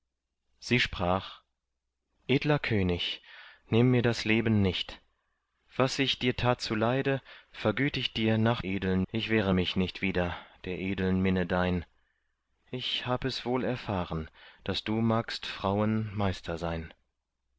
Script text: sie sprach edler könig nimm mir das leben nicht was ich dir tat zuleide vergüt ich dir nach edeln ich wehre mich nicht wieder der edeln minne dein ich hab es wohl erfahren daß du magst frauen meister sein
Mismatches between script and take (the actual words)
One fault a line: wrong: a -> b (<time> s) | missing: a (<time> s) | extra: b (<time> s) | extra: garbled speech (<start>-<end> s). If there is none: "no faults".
no faults